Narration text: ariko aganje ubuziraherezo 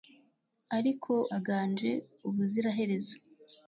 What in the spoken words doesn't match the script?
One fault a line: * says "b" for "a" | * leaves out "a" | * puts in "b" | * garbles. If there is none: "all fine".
all fine